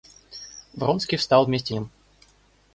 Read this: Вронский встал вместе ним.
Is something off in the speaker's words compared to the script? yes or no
no